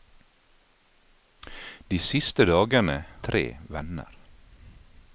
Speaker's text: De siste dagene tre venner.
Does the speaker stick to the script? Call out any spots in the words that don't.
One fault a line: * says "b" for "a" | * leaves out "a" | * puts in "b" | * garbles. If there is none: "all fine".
all fine